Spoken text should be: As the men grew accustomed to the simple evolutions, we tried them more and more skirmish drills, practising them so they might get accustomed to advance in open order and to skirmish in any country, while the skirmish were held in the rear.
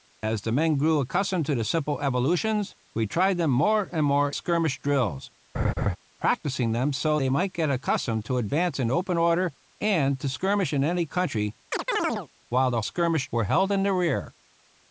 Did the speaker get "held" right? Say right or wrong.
right